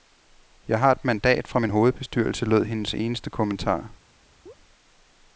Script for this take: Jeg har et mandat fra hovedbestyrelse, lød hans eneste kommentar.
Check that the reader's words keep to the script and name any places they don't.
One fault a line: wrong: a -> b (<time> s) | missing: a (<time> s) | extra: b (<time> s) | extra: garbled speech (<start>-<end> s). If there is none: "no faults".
extra: min (1.6 s)
wrong: hans -> hendes (2.6 s)